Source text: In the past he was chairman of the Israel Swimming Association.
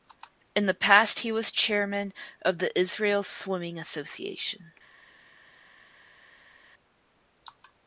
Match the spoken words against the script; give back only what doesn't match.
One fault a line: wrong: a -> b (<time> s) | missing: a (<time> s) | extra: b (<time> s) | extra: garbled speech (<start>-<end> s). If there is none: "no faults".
no faults